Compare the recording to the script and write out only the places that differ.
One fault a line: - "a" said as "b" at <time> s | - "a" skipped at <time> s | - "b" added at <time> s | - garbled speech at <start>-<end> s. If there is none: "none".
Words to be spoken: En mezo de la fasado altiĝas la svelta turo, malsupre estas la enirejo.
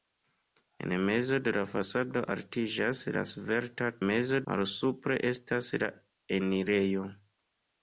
- "turo" said as "mezo" at 4.1 s